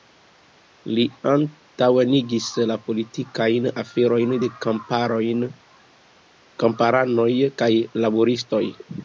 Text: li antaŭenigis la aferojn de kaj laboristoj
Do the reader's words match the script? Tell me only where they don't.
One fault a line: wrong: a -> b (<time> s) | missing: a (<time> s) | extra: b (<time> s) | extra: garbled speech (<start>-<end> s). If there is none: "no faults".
extra: politikajn (2.9 s)
extra: kamparanoj (6.6 s)